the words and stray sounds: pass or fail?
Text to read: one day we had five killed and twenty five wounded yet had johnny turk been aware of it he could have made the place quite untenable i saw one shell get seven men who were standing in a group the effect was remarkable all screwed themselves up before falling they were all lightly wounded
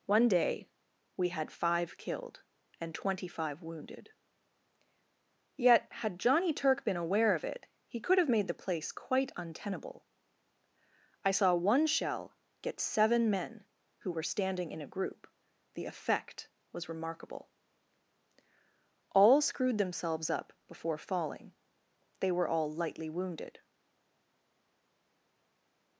pass